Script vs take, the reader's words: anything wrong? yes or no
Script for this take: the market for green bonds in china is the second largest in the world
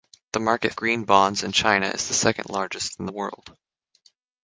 yes